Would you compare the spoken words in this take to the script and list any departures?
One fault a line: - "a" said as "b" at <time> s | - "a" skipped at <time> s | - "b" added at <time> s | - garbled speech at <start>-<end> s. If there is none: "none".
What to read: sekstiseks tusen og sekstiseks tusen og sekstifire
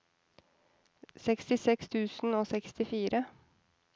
- "sekstiseks tusen og" skipped at 2.5 s